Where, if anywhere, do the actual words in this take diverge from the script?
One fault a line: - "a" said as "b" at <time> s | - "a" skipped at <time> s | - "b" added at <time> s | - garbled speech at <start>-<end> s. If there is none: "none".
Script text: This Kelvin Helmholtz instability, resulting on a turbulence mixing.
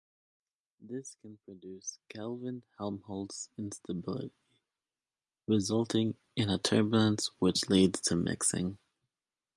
- "can produce" added at 1.2 s
- "on" said as "in" at 6.3 s
- "which leads to" added at 7.4 s